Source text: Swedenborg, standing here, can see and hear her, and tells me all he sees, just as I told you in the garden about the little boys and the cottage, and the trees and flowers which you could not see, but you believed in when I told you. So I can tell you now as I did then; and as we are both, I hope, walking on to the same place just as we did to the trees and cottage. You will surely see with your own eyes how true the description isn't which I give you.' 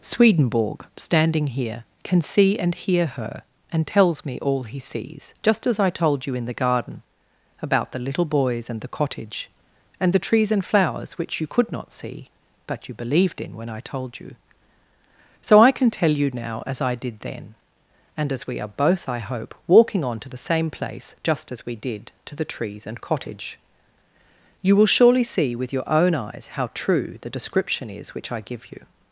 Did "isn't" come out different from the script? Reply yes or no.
yes